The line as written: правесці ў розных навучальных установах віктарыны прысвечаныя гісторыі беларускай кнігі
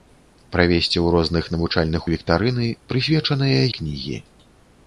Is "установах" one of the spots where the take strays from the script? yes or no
yes